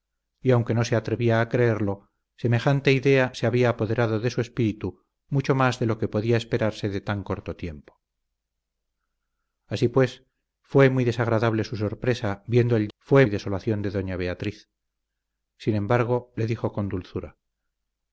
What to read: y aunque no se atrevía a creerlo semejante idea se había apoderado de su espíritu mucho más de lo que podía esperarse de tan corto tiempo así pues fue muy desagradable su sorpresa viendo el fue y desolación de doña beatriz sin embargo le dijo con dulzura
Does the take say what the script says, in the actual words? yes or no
yes